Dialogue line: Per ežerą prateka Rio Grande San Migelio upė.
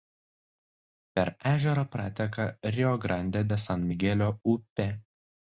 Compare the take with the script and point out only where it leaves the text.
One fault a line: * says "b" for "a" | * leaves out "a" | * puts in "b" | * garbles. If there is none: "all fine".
* puts in "de"